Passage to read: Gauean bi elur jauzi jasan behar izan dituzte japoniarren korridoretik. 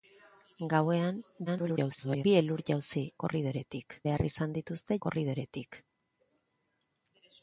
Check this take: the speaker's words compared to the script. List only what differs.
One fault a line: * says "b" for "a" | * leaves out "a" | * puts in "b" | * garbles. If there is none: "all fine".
* garbles
* says "korridoretik" for "jasan"
* leaves out "japoniarren"